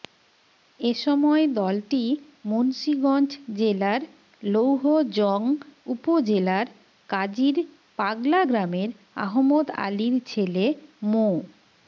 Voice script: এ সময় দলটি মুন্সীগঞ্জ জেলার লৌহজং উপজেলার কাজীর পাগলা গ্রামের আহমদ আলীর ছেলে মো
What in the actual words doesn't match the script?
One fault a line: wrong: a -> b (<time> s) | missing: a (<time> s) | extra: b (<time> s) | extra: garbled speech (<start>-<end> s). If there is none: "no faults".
no faults